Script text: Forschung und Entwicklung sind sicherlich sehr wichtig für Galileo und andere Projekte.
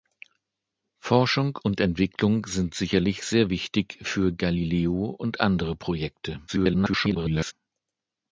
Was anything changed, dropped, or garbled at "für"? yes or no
no